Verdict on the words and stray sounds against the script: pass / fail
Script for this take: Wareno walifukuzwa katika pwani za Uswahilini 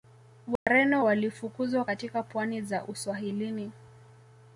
fail